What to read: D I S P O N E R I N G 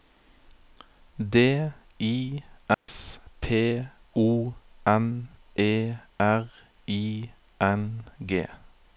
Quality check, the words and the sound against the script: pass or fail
fail